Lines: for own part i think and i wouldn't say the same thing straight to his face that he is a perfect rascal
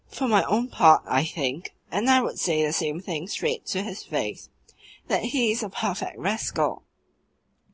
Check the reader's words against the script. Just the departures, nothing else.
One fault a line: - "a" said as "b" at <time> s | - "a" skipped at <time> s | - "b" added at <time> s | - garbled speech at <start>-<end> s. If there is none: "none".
- "my" added at 0.3 s
- "wouldn't" said as "would" at 2.2 s